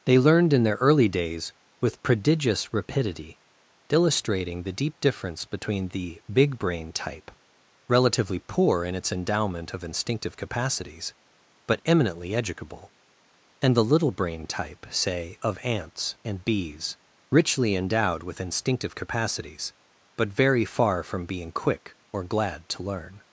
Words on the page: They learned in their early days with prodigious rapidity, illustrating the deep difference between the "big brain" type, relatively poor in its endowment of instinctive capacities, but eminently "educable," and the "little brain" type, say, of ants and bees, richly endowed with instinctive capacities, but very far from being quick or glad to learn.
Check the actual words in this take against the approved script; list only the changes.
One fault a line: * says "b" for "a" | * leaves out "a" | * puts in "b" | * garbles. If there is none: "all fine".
all fine